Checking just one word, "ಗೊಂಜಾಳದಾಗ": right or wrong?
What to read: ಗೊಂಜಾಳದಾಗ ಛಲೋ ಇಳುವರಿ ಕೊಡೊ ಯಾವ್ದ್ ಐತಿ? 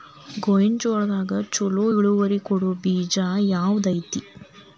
right